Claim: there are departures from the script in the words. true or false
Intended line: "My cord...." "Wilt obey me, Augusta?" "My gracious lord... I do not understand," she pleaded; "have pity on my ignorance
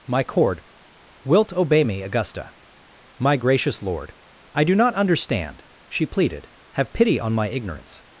false